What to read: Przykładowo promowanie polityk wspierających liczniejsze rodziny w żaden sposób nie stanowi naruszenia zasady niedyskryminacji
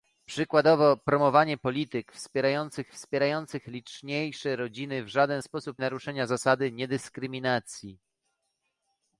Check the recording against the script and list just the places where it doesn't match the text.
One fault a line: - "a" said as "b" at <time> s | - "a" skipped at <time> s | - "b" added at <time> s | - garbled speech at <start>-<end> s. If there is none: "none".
- "wspierających" added at 2.9 s
- "nie stanowi" skipped at 5.8 s